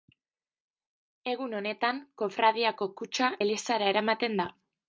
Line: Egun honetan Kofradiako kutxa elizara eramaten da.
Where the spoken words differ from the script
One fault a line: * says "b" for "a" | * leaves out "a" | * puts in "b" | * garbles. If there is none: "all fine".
all fine